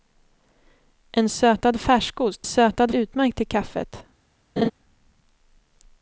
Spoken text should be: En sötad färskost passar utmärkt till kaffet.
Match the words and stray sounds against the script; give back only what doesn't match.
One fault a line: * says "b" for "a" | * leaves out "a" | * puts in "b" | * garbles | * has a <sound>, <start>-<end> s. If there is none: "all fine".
* says "sötad" for "passar"
* has a laugh, 4.6-4.7 s